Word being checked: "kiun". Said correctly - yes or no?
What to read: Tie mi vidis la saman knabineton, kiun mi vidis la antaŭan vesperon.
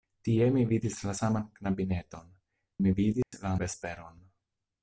no